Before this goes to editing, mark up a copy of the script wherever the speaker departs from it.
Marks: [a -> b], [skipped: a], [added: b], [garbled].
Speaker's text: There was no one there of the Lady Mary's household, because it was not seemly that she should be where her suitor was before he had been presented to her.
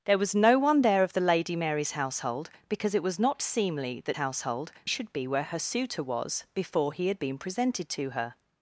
There was no one there of the Lady Mary's household, because it was not seemly that [she -> household] should be where her suitor was before he had been presented to her.